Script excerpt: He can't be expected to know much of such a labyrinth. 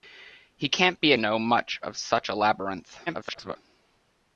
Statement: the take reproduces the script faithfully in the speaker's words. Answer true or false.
false